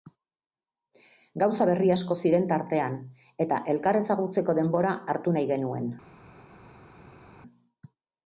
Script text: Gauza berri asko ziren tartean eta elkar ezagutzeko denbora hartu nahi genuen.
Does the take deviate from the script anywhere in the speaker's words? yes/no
no